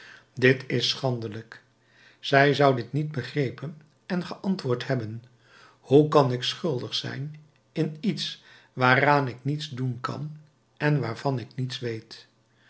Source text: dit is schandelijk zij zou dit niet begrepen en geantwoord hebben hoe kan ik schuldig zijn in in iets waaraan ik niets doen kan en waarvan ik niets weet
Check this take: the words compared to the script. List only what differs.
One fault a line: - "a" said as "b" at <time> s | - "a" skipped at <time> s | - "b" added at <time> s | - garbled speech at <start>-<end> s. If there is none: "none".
- "in" skipped at 8.0 s